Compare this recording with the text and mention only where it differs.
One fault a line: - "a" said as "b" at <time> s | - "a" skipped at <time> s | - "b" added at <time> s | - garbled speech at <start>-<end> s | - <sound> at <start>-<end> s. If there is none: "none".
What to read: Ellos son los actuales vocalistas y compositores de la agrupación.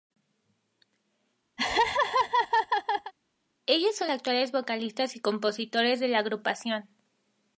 - laugh at 1.6-3.1 s
- "los" skipped at 4.1 s